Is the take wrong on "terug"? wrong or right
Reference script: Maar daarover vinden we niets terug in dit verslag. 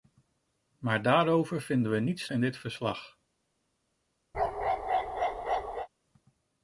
wrong